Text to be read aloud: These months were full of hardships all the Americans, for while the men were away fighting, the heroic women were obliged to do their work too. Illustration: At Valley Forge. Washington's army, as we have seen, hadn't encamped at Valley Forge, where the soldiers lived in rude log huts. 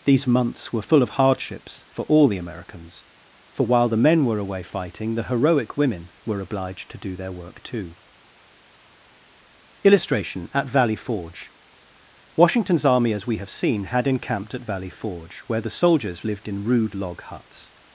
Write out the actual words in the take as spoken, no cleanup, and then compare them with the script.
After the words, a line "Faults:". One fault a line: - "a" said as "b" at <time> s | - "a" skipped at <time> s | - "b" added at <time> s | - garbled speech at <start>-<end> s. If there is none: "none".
These months were full of hardships for all the Americans, for while the men were away fighting, the heroic women were obliged to do their work too. Illustration: At Valley Forge. Washington's army, as we have seen, had encamped at Valley Forge, where the soldiers lived in rude log huts.
Faults:
- "for" added at 1.9 s
- "hadn't" said as "had" at 13.8 s